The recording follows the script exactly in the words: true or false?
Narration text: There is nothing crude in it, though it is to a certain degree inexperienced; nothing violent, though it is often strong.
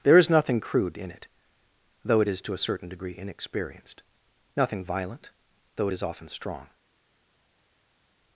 true